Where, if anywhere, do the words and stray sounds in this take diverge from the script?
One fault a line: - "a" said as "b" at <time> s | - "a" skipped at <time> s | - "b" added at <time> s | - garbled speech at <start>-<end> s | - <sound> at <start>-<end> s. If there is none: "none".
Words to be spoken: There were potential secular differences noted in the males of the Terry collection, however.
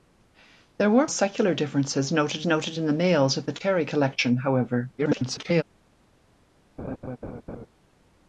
- "potential" skipped at 1.1 s
- "noted" added at 2.4 s
- garbled speech at 5.0-5.6 s
- laugh at 6.8-7.7 s